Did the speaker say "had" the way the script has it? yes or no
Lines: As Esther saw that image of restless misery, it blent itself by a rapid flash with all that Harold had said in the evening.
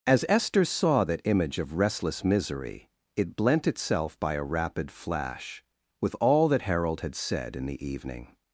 yes